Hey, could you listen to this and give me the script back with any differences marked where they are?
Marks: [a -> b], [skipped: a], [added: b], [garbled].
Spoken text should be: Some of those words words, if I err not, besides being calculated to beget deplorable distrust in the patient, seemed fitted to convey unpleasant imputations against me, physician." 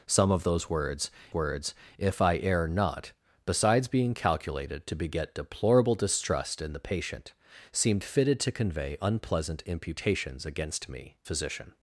Some of those words words, if I err not, besides being calculated to beget deplorable distrust in the patient, seemed fitted to convey unpleasant imputations against me, physician."